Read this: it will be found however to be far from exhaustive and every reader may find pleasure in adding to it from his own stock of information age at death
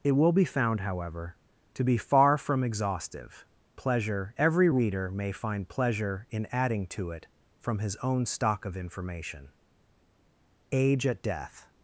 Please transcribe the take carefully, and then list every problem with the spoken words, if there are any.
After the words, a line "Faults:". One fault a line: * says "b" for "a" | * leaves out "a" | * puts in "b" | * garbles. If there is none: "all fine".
it will be found however to be far from exhaustive pleasure every reader may find pleasure in adding to it from his own stock of information age at death
Faults:
* says "pleasure" for "and"